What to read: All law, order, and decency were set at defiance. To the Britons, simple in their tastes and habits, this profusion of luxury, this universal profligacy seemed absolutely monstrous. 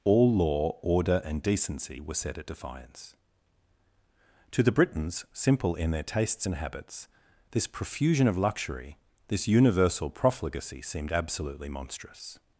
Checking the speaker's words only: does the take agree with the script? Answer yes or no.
yes